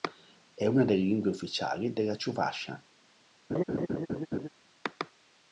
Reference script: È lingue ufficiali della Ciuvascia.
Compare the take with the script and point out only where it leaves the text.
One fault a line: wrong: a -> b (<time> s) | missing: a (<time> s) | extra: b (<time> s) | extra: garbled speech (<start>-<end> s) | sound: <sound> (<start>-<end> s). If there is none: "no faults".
extra: una delle (0.7 s)
sound: laugh (3.5-4.5 s)